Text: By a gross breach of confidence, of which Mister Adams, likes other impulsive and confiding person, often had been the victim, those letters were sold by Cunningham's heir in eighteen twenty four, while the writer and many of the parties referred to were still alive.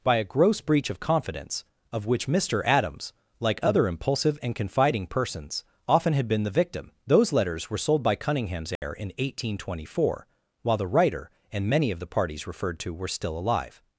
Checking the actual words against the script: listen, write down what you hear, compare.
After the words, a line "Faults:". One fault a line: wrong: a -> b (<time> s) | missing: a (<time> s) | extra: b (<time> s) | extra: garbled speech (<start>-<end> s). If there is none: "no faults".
By a gross breach of confidence, of which Mister Adams, like other impulsive and confiding persons, often had been the victim, those letters were sold by Cunningham's heir in eighteen twenty four, while the writer and many of the parties referred to were still alive.
Faults:
wrong: likes -> like (3.4 s)
wrong: person -> persons (5.1 s)